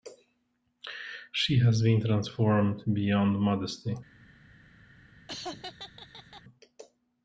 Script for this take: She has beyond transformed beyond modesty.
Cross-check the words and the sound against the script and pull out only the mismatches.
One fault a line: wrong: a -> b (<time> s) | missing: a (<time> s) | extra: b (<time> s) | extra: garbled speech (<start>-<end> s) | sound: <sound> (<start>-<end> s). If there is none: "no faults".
wrong: beyond -> been (1.8 s)
sound: laugh (5.3-6.4 s)